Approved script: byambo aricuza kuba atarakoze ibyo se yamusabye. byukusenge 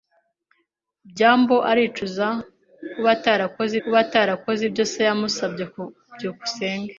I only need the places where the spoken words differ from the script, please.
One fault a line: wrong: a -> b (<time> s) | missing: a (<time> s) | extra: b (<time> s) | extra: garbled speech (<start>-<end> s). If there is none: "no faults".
extra: kuba atarakoze (3.8 s)